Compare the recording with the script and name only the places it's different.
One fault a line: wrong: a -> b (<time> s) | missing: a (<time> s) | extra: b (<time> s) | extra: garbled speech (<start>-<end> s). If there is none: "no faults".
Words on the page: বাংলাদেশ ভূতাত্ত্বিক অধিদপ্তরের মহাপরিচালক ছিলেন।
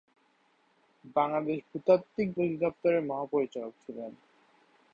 no faults